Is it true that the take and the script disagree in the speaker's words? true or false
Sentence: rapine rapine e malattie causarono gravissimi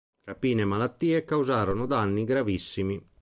true